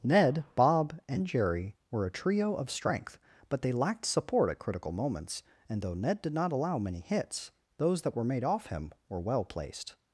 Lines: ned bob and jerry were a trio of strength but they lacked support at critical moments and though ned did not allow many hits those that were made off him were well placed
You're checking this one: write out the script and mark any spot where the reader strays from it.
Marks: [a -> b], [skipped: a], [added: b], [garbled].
ned bob and jerry were a trio of strength but they lacked support at critical moments and though ned did not allow many hits those that were made off him were well placed